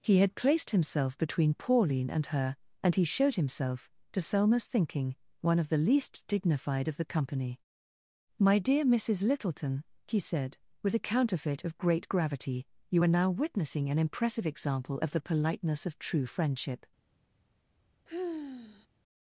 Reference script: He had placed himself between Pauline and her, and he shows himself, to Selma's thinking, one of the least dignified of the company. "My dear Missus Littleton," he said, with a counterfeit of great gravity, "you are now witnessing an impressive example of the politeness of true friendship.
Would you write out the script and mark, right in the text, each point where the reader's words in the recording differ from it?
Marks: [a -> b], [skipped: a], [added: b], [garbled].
He had placed himself between Pauline and her, and he [shows -> showed] himself, to Selma's thinking, one of the least dignified of the company. "My dear Missus Littleton," he said, with a counterfeit of great gravity, "you are now witnessing an impressive example of the politeness of true friendship.